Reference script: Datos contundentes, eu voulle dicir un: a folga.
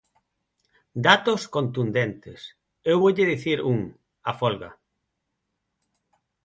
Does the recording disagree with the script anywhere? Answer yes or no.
no